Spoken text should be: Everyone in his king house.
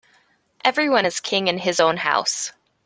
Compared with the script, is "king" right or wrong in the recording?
wrong